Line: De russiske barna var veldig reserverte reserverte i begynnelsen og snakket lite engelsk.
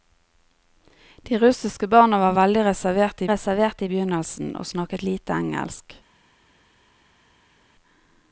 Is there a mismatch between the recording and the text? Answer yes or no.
no